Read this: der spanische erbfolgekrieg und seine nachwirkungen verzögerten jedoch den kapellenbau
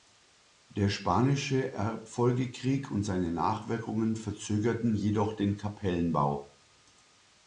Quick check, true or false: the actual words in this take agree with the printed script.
true